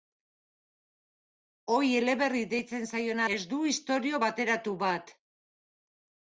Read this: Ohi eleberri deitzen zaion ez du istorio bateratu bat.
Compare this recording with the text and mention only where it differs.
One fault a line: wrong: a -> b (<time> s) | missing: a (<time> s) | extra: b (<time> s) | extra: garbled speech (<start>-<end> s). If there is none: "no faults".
no faults